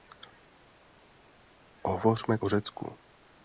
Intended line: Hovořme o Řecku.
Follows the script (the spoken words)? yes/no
yes